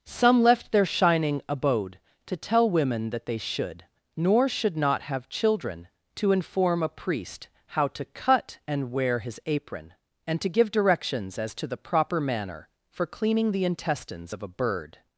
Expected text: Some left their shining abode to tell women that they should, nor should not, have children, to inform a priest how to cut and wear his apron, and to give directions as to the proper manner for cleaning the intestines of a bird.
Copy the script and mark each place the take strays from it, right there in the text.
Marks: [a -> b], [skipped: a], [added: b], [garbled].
Some left their shining abode to tell women that they should, nor should not, have children, to inform a priest how to cut and wear his apron, and to give directions as to the proper manner for cleaning the intestines of a bird.